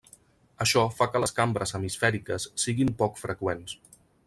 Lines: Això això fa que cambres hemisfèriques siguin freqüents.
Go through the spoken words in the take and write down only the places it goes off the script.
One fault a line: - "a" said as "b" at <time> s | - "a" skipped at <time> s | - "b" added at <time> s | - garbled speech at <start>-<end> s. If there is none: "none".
- "això" skipped at 0.8 s
- "les" added at 1.2 s
- "poc" added at 3.0 s